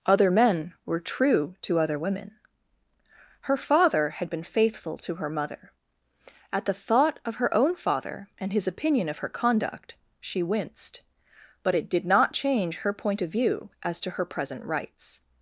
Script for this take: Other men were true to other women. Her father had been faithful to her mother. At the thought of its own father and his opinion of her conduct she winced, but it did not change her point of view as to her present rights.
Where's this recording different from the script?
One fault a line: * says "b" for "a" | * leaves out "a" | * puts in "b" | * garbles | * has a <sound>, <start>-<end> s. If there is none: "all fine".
* says "her" for "its"